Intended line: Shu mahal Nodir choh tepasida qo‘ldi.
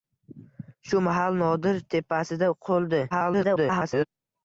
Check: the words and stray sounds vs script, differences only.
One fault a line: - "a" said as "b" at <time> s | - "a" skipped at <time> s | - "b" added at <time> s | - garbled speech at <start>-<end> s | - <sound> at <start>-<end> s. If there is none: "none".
- "choh" skipped at 1.8 s
- garbled speech at 3.1-4.1 s